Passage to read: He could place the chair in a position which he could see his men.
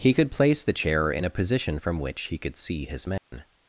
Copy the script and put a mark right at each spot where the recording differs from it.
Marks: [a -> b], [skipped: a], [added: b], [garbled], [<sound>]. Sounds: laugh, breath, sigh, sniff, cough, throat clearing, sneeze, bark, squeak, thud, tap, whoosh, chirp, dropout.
He could place the chair in a position [added: from] which he could see his men. [dropout]